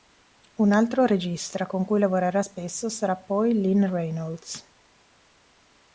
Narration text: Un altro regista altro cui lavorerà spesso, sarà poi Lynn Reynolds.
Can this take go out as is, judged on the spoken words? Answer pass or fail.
fail